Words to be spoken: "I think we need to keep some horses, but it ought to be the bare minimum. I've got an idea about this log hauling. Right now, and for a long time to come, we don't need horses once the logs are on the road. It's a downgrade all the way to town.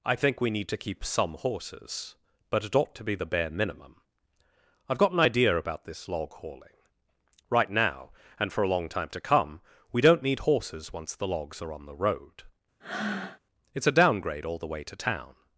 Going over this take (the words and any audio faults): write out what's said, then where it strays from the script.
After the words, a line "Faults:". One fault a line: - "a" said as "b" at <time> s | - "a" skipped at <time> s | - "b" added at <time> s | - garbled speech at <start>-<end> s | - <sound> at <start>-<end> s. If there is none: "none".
"I think we need to keep some horses, but it ought to be the bare minimum. I've got an idea about this log hauling. Right now, and for a long time to come, we don't need horses once the logs are on the road. It's a downgrade all the way to town.
Faults:
- breath at 12.8-13.4 s